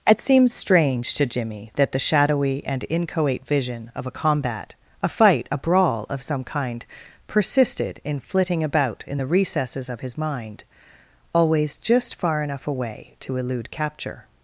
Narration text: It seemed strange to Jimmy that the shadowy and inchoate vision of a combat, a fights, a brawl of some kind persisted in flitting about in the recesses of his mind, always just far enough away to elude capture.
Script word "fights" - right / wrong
wrong